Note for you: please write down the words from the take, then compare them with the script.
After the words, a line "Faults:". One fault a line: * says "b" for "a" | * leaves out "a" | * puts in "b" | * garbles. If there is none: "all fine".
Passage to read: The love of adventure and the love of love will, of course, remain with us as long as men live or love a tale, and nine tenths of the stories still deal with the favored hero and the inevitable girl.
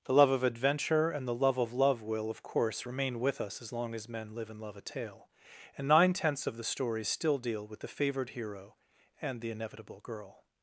The love of adventure and the love of love will, of course, remain with us as long as men live and love a tale, and nine tenths of the stories still deal with the favored hero and the inevitable girl.
Faults:
* says "and" for "or"